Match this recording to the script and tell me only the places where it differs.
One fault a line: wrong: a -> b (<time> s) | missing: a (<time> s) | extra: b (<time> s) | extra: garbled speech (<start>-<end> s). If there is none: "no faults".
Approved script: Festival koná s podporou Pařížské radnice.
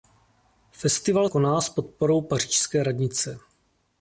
no faults